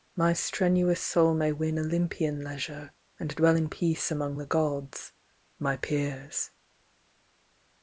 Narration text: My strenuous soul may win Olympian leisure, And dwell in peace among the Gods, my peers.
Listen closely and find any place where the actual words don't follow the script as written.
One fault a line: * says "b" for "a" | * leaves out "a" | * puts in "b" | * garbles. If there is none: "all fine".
all fine